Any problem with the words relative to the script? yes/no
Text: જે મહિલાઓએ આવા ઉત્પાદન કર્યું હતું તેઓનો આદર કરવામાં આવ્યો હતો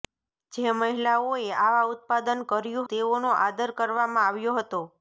yes